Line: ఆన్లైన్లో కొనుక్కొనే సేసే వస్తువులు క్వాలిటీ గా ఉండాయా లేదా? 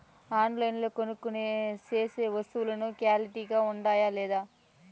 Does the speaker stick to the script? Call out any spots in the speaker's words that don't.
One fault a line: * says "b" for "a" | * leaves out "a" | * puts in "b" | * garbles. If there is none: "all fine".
all fine